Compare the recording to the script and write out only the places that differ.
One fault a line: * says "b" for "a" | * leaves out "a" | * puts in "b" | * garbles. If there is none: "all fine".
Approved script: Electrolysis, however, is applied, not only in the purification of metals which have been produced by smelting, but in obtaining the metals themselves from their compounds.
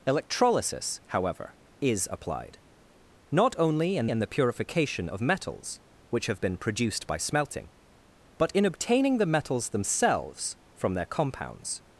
* puts in "in"